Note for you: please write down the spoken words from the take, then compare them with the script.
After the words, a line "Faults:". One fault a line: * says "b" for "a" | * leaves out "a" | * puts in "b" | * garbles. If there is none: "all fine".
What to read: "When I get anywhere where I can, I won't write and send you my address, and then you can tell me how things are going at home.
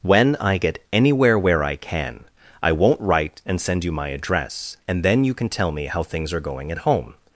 "When I get anywhere where I can, I won't write and send you my address, and then you can tell me how things are going at home.
Faults:
all fine